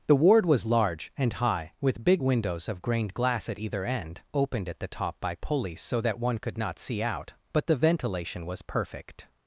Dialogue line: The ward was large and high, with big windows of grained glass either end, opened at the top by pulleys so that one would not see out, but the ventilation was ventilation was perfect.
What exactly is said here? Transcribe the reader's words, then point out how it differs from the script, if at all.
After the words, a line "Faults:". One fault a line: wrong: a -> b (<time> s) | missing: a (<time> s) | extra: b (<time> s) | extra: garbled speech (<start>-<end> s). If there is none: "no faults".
The ward was large and high, with big windows of grained glass at either end, opened at the top by pulleys so that one could not see out, but the ventilation was perfect.
Faults:
extra: at (3.5 s)
wrong: would -> could (6.4 s)
missing: ventilation was (8.6 s)